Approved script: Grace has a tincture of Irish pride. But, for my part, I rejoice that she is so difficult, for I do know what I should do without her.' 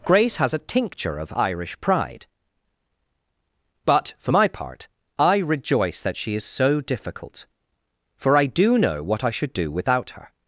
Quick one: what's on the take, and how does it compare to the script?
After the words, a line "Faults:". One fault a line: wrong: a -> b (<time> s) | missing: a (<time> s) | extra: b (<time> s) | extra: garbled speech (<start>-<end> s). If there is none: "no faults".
Grace has a tincture of Irish pride. But, for my part, I rejoice that she is so difficult, for I do know what I should do without her.'
Faults:
no faults